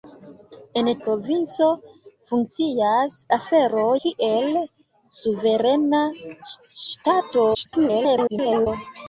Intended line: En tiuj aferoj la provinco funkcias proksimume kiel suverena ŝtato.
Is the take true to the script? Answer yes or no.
no